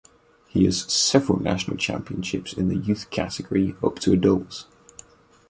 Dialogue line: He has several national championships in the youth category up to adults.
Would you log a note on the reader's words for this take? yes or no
no